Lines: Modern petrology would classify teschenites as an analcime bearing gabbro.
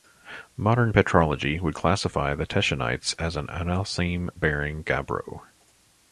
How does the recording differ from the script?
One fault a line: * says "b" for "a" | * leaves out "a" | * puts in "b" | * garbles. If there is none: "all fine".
* puts in "the"